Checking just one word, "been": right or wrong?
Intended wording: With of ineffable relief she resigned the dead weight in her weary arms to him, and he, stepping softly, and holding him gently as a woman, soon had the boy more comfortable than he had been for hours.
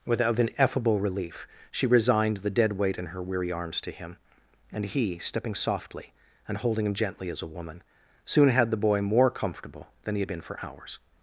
right